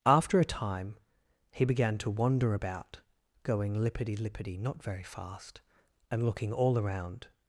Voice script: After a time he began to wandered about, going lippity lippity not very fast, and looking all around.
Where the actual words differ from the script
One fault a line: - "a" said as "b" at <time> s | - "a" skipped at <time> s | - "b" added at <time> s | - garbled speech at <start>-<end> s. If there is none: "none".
- "wandered" said as "wander" at 2.1 s